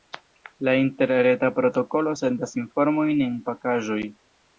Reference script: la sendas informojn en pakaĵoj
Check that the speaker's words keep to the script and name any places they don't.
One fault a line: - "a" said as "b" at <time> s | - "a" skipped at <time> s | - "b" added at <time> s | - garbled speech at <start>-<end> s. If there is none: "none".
- "interreta protokolo" added at 0.8 s